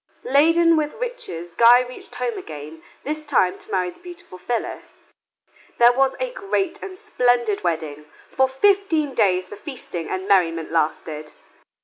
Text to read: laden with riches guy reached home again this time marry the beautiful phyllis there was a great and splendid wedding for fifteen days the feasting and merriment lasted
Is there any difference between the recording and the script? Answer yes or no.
yes